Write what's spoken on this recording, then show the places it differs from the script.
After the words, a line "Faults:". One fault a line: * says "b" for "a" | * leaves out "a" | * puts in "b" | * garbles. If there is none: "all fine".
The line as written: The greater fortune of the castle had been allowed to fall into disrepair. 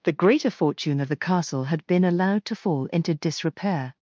The greater fortune of the castle had been allowed to fall into disrepair.
Faults:
all fine